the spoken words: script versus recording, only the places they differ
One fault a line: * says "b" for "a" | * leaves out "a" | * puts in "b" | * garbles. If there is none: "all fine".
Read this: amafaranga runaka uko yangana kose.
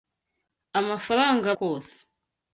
* leaves out "runaka uko yangana"